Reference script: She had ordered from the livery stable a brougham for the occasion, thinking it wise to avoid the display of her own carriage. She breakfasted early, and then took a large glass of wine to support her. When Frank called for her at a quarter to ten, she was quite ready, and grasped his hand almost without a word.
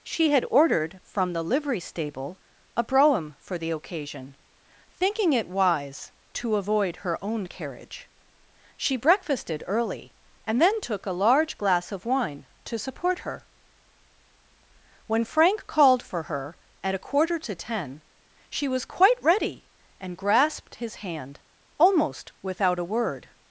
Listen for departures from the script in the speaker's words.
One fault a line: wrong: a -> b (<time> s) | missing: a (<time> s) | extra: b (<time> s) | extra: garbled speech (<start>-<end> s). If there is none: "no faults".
missing: the display of (7.0 s)